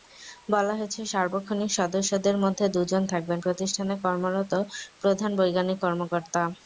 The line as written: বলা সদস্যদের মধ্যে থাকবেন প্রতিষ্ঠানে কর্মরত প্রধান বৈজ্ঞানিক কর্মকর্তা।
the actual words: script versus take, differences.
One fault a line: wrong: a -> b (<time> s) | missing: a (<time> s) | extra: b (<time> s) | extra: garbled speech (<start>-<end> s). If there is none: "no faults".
extra: হয়েছে সার্বক্ষণিক (0.7 s)
extra: দুজন (2.8 s)